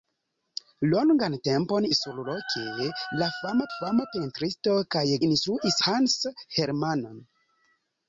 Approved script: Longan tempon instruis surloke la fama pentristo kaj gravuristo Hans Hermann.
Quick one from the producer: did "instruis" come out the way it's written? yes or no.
no